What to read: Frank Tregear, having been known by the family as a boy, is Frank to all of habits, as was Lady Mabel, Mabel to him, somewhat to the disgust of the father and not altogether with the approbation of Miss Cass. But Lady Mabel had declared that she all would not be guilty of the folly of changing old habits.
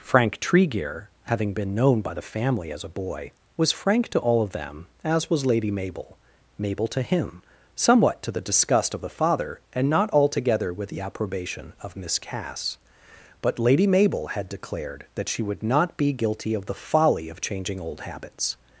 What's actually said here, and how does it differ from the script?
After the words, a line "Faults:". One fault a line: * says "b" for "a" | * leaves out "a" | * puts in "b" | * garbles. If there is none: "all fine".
Frank Tregear, having been known by the family as a boy, was Frank to all of them, as was Lady Mabel, Mabel to him, somewhat to the disgust of the father and not altogether with the approbation of Miss Cass. But Lady Mabel had declared that she would not be guilty of the folly of changing old habits.
Faults:
* says "was" for "is"
* says "them" for "habits"
* leaves out "all"